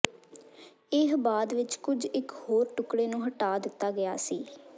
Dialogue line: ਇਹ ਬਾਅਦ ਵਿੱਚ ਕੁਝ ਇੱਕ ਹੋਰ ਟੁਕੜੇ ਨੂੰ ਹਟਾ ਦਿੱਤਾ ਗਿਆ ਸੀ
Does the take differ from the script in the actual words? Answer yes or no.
no